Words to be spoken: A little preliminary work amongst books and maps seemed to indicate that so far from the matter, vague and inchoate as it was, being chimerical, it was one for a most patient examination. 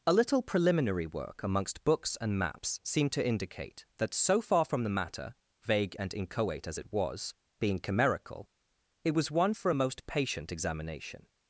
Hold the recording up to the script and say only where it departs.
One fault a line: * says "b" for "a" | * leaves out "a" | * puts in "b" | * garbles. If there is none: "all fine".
all fine